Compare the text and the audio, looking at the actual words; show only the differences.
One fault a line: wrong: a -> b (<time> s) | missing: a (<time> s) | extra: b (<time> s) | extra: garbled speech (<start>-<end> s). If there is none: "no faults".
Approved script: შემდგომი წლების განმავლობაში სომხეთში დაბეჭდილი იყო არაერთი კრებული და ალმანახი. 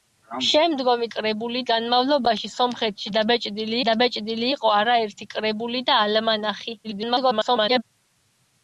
wrong: წლების -> კრებული (1.2 s)
extra: დაბეჭდილი (3.9 s)
extra: garbled speech (6.8-7.8 s)